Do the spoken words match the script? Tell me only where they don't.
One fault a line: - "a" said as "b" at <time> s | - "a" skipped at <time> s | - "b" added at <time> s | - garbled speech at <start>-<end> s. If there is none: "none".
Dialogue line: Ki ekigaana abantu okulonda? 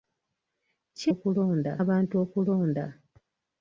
- "ekigaana" said as "okulonda" at 1.1 s